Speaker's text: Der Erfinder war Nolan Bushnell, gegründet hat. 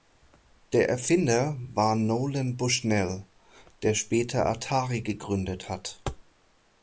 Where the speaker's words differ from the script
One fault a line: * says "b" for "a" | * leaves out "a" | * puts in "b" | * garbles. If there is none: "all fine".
* puts in "der später Atari"